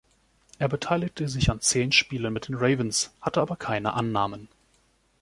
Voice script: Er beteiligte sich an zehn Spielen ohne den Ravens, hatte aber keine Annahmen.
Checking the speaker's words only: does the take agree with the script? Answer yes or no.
no